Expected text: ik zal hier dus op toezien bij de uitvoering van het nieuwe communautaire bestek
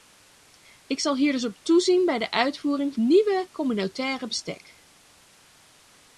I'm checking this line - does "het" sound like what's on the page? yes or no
no